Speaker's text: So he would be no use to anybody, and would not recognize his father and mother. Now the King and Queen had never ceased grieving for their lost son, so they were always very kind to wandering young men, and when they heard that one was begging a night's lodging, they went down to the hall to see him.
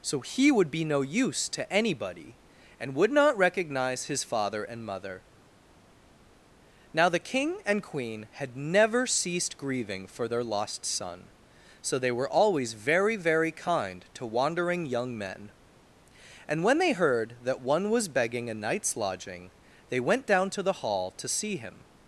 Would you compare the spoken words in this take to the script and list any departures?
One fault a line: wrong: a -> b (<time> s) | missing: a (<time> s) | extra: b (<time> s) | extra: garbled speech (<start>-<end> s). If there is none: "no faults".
extra: very (13.1 s)